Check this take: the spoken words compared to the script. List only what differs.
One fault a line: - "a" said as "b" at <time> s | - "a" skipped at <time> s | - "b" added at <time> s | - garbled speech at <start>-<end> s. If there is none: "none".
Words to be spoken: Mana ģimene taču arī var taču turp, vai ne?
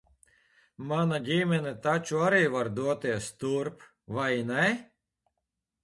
- "taču" said as "doties" at 2.8 s